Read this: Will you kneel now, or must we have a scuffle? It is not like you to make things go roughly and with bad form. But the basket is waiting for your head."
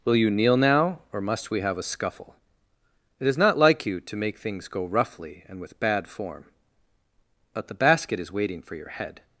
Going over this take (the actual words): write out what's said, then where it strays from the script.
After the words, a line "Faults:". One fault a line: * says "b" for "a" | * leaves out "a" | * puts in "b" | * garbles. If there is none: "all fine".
Will you kneel now, or must we have a scuffle? It is not like you to make things go roughly and with bad form. But the basket is waiting for your head."
Faults:
all fine